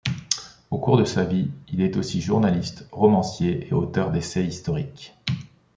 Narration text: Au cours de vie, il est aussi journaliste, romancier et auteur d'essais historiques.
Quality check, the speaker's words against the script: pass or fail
fail